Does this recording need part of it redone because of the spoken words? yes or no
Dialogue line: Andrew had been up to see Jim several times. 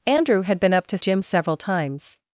yes